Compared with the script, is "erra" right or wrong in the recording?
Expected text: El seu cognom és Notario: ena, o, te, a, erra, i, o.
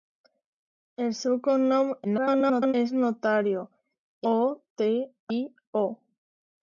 wrong